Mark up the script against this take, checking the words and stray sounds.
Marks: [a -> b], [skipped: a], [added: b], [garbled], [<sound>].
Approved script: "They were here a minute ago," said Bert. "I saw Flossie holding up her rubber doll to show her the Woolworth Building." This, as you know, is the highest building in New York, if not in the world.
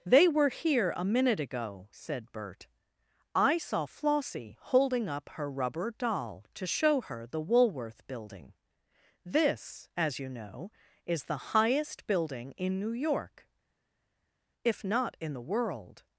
"They were here a minute ago," said Bert. "I saw Flossie holding up her rubber doll to show her the Woolworth Building." This, as you know, is the highest building in New York, if not in the world.